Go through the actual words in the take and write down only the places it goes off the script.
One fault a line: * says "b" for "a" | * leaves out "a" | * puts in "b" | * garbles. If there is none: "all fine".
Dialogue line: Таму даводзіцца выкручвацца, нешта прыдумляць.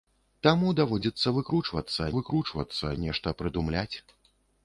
* puts in "выкручвацца"